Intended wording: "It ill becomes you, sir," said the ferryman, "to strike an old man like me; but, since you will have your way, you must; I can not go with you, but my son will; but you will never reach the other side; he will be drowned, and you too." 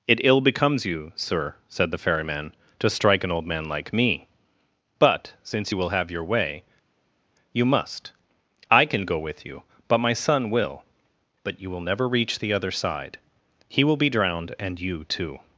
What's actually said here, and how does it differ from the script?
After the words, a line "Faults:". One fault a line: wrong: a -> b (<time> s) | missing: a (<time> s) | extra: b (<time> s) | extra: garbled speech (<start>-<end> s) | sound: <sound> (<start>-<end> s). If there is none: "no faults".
"It ill becomes you, sir," said the ferryman, "to strike an old man like me; but, since you will have your way, you must; I can go with you, but my son will; but you will never reach the other side; he will be drowned, and you too."
Faults:
missing: not (9.1 s)